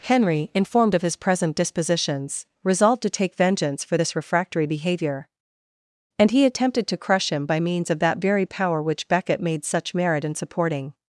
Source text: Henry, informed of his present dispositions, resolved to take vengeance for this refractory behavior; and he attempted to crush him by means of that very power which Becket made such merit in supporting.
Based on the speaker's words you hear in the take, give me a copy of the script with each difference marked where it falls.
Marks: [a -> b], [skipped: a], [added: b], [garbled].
Henry, informed of his present dispositions, resolved to take vengeance for this refractory behavior; and he attempted to crush him by means of that very power which Becket made such merit in supporting.